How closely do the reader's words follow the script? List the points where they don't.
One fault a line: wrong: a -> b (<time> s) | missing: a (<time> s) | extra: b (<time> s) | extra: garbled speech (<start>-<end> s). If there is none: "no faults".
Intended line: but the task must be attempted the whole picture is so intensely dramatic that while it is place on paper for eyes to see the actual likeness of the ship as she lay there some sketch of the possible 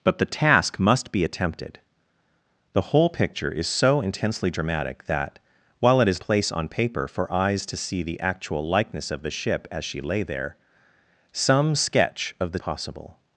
no faults